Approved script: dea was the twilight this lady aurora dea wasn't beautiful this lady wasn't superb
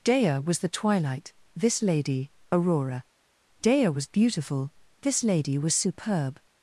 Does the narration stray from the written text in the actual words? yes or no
yes